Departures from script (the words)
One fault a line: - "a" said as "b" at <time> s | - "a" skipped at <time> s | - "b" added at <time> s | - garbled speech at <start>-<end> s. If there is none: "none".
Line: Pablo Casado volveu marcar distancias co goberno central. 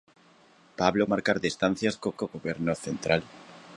- "Casado volveu" skipped at 1.1 s
- "co" added at 2.2 s